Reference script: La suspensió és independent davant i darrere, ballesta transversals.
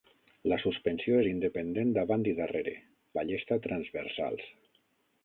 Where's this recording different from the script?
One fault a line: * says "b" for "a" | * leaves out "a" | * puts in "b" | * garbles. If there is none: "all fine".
all fine